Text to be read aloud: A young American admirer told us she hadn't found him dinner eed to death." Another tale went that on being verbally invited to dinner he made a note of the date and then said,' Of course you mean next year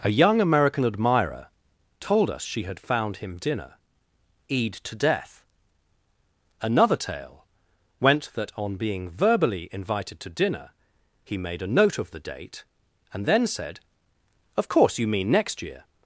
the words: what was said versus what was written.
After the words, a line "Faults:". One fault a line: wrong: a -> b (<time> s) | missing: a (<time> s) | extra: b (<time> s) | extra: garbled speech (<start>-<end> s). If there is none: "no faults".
A young American admirer told us she had found him dinner eed to death." Another tale went that on being verbally invited to dinner he made a note of the date and then said,' Of course you mean next year
Faults:
wrong: hadn't -> had (2.6 s)